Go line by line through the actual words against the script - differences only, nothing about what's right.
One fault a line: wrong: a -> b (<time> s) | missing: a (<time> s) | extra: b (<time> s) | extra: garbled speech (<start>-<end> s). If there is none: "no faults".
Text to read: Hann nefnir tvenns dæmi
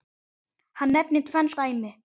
no faults